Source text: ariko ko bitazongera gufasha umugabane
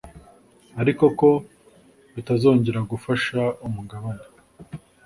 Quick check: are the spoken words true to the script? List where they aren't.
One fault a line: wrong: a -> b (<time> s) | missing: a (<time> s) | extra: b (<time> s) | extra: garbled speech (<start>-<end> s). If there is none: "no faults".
no faults